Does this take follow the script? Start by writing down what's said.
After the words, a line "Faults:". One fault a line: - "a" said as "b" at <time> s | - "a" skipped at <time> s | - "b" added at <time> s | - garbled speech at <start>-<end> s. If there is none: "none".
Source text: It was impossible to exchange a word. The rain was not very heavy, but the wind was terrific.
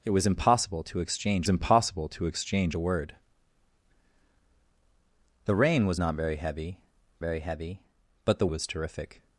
It was impossible to exchange impossible to exchange a word. The rain was not very heavy very heavy, but the was terrific.
Faults:
- "impossible to exchange" added at 1.5 s
- "very heavy" added at 7.2 s
- "wind" skipped at 8.5 s